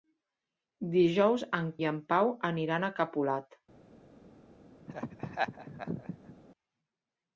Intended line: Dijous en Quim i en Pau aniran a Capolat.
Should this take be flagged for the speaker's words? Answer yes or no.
yes